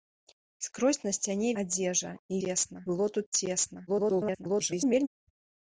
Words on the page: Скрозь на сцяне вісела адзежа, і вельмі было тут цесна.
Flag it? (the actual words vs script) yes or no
yes